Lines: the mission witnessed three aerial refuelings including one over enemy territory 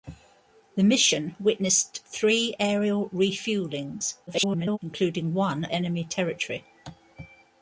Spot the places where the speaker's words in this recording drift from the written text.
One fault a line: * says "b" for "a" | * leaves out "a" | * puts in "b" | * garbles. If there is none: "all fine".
* garbles
* leaves out "over"